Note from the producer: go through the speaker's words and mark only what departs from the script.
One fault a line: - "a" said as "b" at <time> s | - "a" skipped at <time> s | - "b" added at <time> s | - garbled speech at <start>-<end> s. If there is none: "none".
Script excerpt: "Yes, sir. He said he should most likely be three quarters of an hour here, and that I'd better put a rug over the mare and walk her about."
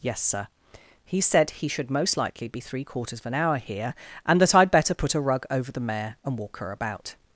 none